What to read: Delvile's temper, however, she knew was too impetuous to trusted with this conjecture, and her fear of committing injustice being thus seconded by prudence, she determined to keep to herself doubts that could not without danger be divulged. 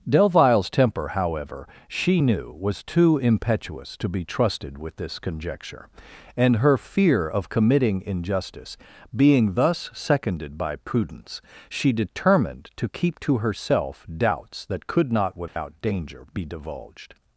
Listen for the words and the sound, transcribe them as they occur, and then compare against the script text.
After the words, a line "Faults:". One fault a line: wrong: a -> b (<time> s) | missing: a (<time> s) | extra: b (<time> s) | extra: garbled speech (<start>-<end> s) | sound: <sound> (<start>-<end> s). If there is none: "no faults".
Delvile's temper, however, she knew was too impetuous to be trusted with this conjecture, and her fear of committing injustice being thus seconded by prudence, she determined to keep to herself doubts that could not without danger be divulged.
Faults:
extra: be (4.1 s)
sound: dropout (15.5-15.6 s)